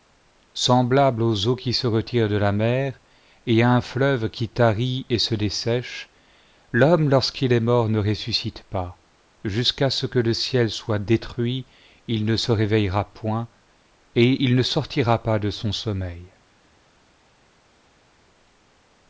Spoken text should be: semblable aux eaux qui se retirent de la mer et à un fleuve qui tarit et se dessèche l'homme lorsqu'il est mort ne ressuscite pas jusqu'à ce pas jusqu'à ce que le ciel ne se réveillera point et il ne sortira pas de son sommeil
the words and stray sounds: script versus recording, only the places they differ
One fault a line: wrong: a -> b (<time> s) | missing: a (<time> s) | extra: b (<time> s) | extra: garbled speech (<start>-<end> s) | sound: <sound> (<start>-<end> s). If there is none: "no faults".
wrong: pas jusqu'à ce que le ciel -> que le ciel soit détruit il (10.1 s)